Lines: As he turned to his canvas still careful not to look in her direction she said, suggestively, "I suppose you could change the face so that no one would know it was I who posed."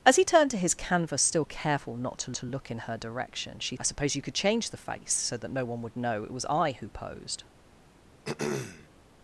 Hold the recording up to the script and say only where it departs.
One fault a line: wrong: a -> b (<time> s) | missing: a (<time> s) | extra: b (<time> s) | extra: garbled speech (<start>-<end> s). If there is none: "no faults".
extra: to (2.3 s)
missing: said suggestively (3.8 s)